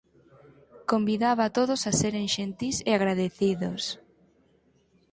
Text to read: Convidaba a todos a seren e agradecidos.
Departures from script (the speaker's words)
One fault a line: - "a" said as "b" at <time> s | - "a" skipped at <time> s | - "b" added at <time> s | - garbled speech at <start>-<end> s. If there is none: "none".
- "xentís" added at 2.4 s